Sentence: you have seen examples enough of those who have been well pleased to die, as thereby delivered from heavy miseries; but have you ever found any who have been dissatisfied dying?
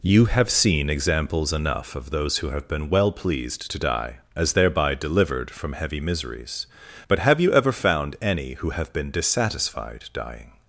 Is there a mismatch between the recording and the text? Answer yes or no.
no